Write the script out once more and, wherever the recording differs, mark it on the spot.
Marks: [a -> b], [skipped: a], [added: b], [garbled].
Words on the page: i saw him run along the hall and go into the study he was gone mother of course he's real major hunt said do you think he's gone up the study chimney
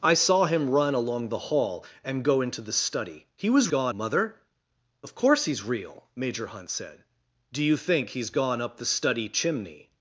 i saw him run along the hall and go into the study he was gone mother of course he's real major hunt said do you think he's gone up the study chimney